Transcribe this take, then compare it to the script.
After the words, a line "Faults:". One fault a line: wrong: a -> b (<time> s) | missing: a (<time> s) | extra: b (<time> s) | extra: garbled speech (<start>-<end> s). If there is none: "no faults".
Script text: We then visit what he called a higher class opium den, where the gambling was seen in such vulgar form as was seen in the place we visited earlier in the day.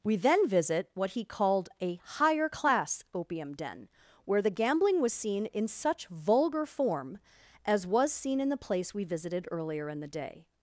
We then visit what he called a higher class opium den, where the gambling was seen in such vulgar form as was seen in the place we visited earlier in the day.
Faults:
no faults